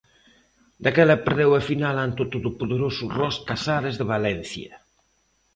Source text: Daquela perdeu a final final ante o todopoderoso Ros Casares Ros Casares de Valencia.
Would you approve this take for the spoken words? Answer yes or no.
no